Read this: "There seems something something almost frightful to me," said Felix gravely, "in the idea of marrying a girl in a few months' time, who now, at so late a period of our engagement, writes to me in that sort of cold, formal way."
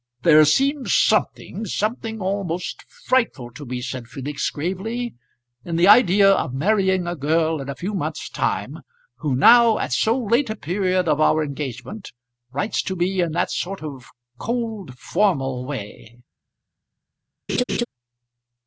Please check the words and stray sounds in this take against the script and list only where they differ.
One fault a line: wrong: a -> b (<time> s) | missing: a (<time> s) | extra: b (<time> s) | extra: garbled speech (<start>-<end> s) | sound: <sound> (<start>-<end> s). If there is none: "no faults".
sound: laugh (17.5-17.9 s)